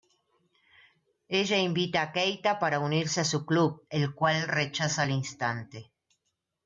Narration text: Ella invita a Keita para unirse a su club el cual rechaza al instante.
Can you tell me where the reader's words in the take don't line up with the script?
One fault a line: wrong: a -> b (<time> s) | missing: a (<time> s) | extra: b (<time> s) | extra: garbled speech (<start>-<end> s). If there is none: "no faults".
no faults